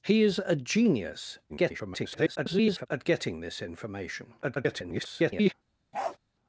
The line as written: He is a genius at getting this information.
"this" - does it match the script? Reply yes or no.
yes